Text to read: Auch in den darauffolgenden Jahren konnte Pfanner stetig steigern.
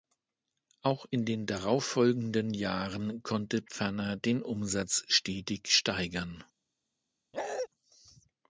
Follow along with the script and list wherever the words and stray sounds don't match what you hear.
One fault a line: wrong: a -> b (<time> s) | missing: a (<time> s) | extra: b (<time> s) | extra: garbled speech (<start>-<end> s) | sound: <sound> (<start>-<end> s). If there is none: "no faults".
extra: den Umsatz (4.1 s)
sound: bark (7.3-7.7 s)